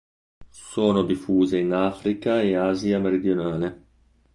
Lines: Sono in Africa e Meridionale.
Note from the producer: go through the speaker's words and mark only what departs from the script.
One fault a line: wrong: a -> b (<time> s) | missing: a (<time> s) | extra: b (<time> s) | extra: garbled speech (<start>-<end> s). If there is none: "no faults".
extra: diffuse (1.0 s)
extra: Asia (2.5 s)